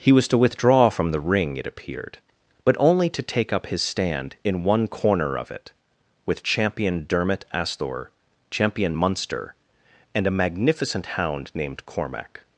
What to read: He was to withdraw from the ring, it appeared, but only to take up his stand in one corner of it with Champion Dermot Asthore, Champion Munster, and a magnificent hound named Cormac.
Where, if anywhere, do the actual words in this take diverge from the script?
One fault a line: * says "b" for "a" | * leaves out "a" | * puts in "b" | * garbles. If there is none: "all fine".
all fine